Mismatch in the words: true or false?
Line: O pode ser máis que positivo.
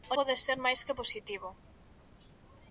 false